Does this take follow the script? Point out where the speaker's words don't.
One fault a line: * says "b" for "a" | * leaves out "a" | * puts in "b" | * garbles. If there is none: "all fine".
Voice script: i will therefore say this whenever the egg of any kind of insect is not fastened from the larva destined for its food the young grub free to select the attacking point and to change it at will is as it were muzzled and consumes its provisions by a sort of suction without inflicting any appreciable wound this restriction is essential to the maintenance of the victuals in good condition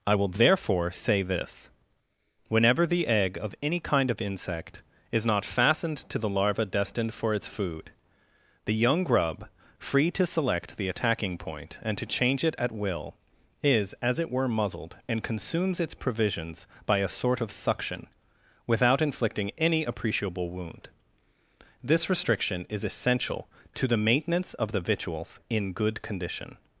* says "to" for "from"